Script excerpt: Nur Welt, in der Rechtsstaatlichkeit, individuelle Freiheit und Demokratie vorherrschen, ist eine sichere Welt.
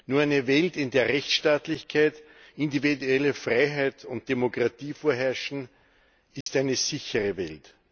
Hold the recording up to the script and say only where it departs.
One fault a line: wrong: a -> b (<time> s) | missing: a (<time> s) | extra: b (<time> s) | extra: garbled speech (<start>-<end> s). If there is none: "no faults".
extra: eine (0.2 s)